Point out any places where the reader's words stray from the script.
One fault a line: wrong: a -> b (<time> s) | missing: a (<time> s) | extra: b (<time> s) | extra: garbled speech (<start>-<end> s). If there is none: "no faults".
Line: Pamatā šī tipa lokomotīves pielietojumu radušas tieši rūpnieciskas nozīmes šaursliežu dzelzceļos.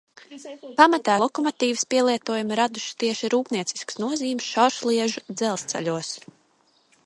missing: šī tipa (1.2 s)